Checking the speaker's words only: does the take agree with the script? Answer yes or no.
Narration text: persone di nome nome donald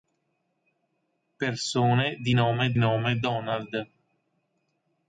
yes